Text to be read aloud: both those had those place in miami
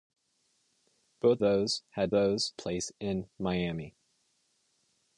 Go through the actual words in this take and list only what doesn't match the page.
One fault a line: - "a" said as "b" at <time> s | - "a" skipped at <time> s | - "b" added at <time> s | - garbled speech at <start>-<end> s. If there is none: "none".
none